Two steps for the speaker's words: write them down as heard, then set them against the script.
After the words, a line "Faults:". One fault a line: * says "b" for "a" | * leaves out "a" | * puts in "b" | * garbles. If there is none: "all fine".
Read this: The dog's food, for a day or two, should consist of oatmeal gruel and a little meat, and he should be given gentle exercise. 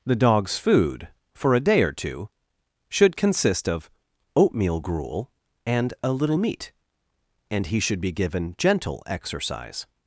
The dog's food, for a day or two, should consist of oatmeal gruel and a little meat, and he should be given gentle exercise.
Faults:
all fine